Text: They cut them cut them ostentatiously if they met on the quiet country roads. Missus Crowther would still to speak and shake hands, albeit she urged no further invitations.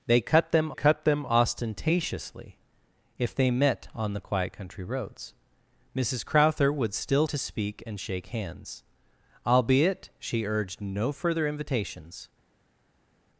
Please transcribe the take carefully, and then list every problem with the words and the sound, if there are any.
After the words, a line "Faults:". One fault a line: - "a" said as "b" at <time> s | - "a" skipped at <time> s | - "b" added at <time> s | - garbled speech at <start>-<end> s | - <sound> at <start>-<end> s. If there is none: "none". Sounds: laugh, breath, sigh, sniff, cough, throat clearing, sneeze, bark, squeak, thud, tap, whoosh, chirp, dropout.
They cut them cut them ostentatiously if they met on the quiet country roads. Missus Crowther would still to speak and shake hands, albeit she urged no further invitations.
Faults:
none